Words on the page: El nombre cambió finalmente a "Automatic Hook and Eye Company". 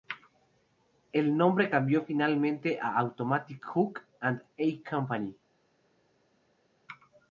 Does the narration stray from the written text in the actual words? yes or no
no